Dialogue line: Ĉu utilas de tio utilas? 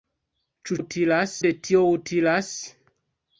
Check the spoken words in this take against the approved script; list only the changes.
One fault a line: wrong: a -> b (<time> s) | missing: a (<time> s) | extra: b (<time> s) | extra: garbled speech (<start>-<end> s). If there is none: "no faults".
no faults